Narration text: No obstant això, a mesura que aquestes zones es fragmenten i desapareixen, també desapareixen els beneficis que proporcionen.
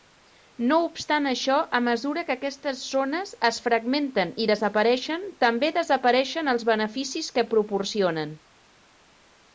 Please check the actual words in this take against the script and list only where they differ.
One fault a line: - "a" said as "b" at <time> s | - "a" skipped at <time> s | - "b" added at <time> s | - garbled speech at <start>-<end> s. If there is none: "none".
none